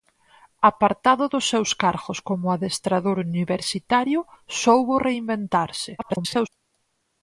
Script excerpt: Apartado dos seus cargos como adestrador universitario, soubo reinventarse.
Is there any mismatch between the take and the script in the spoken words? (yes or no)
yes